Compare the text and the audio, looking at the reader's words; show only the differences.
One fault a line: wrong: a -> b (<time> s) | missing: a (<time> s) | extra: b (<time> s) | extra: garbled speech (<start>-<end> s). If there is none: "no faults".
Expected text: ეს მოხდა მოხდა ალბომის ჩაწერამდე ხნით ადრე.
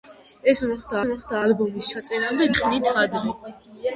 no faults